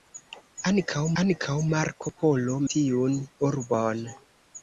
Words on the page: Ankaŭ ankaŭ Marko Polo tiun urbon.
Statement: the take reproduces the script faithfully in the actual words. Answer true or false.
true